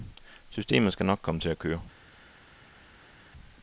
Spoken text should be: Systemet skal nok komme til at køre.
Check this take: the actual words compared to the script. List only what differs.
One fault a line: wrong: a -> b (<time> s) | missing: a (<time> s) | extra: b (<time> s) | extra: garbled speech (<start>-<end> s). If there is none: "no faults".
no faults